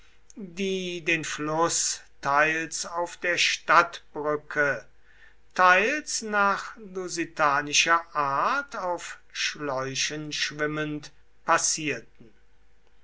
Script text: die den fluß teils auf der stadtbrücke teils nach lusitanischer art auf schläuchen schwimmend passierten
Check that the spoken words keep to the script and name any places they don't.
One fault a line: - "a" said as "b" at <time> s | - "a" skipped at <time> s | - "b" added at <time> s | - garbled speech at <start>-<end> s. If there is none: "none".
none